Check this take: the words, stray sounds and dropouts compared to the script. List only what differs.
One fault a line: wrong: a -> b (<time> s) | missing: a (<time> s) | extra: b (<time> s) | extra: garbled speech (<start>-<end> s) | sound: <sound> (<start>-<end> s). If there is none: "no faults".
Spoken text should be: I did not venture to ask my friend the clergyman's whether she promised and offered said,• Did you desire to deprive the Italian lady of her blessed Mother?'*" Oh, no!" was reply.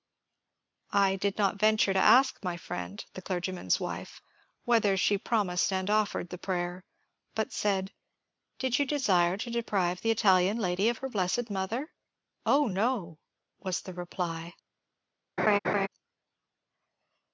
extra: wife (3.8 s)
extra: the prayer but (6.3 s)
extra: the (13.8 s)
sound: laugh (15.4-15.9 s)